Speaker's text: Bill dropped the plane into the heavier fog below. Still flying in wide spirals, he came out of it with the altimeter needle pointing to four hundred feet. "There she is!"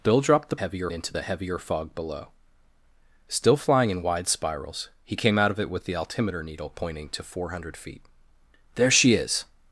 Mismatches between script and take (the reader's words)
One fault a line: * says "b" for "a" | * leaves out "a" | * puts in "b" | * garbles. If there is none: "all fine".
* says "heavier" for "plane"